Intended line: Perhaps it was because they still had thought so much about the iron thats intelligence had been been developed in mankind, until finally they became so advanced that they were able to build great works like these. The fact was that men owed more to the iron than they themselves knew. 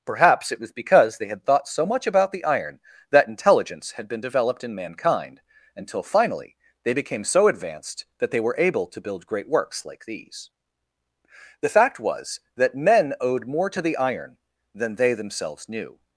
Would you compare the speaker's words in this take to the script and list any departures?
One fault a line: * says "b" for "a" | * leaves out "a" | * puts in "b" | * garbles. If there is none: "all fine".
* leaves out "still"
* says "that" for "thats"
* leaves out "been"